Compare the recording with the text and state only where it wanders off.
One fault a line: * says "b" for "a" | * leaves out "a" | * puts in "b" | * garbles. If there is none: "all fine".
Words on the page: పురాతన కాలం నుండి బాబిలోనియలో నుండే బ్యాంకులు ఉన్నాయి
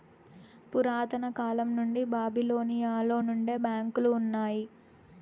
all fine